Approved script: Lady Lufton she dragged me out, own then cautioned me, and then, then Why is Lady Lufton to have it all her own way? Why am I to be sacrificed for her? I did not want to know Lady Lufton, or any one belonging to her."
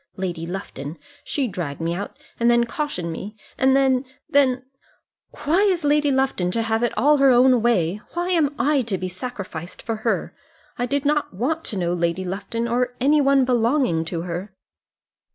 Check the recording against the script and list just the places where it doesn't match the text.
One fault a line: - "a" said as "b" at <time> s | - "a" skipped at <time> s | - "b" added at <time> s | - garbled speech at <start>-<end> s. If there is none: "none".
- "own" said as "and" at 2.4 s